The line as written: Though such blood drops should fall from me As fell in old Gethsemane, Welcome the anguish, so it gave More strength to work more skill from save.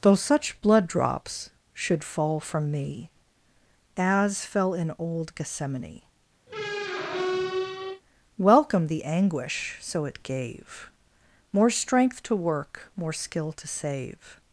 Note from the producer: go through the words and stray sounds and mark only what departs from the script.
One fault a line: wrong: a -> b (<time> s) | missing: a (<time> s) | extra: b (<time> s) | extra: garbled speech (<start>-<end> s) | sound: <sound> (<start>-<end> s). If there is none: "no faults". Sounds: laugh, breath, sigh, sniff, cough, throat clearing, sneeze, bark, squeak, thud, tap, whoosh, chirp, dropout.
sound: squeak (6.5-8.0 s)
wrong: from -> to (13.5 s)